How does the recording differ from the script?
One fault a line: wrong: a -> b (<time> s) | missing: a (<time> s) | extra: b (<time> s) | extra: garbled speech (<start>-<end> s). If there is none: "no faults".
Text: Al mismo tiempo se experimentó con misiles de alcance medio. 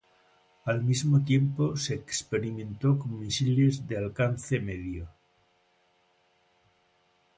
no faults